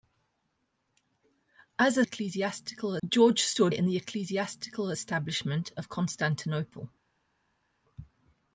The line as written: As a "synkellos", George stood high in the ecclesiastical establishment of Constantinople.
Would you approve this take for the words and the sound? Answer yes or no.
no